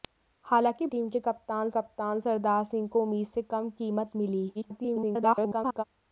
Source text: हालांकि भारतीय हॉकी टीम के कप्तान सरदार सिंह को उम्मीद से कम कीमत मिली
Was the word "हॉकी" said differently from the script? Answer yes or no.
yes